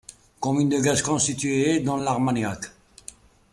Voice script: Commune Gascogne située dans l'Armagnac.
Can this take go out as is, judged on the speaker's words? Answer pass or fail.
fail